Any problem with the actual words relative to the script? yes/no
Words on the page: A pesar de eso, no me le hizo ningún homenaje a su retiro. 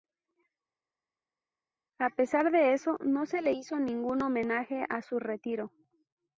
yes